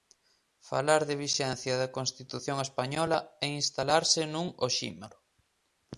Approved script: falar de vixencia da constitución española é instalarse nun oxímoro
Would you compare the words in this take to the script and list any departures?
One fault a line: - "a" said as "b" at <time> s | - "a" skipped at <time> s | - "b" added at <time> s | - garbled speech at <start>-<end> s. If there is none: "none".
none